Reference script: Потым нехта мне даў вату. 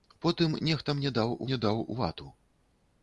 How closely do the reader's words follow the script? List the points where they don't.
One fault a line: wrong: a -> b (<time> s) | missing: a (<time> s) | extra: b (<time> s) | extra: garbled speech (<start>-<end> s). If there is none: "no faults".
extra: мне даў (1.5 s)